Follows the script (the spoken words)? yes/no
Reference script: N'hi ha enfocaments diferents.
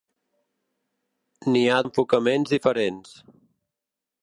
yes